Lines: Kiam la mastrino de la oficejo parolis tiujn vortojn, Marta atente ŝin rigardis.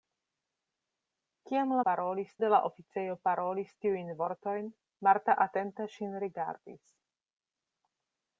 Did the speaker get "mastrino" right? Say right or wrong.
wrong